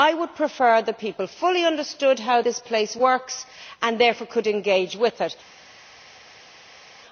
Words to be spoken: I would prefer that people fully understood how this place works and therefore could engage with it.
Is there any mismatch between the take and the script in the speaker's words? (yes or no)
no